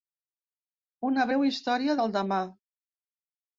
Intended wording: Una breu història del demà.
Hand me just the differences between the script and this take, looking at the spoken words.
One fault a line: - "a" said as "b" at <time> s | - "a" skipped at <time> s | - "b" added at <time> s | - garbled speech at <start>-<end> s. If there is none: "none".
none